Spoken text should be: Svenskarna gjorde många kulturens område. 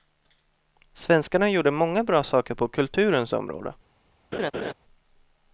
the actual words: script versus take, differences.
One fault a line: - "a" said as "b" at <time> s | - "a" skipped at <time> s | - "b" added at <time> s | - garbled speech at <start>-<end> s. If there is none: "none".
- "bra saker på" added at 2.0 s